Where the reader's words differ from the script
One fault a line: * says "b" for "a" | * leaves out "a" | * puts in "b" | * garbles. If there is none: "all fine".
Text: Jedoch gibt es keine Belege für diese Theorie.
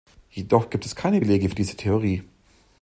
all fine